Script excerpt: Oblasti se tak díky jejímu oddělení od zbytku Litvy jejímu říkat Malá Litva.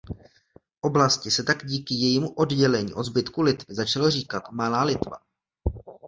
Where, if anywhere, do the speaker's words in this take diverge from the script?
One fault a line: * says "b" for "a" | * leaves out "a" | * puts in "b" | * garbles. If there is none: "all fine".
* says "začalo" for "jejímu"